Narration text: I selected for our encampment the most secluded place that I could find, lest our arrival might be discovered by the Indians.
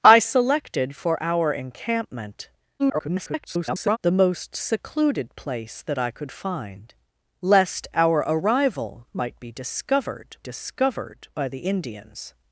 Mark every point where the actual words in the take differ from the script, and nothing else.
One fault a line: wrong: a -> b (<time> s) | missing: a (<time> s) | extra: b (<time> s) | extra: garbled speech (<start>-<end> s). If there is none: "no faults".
extra: garbled speech (2.8-4.0 s)
extra: discovered (10.4 s)